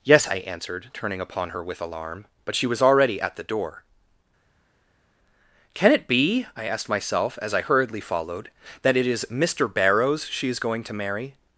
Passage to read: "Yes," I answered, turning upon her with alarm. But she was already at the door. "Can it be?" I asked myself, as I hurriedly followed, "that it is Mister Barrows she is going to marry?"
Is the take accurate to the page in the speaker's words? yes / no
yes